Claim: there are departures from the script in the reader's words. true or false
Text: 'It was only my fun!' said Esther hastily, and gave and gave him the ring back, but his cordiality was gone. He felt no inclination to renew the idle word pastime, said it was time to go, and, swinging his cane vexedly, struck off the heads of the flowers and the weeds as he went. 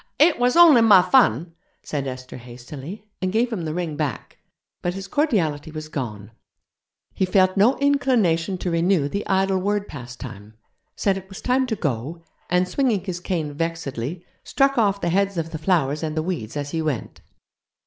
true